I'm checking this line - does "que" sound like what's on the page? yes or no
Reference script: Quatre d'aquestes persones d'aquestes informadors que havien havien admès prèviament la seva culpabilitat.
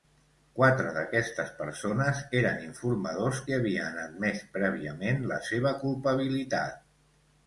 yes